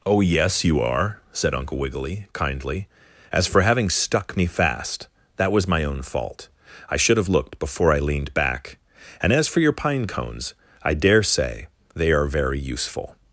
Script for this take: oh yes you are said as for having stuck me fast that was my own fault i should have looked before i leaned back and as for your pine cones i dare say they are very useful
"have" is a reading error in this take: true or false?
false